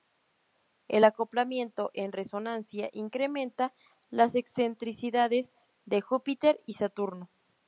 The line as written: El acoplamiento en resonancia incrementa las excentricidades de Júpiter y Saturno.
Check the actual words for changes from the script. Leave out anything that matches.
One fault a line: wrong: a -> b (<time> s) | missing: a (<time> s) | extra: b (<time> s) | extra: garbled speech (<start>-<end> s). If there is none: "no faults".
no faults